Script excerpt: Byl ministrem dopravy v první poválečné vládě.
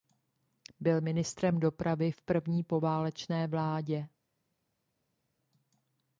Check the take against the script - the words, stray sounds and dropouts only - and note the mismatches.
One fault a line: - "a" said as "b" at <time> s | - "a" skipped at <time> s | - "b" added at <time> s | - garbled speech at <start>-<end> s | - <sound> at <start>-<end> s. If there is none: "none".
none